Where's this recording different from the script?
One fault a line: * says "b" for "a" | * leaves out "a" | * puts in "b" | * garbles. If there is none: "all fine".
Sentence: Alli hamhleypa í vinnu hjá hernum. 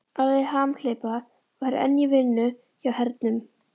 * puts in "var enn"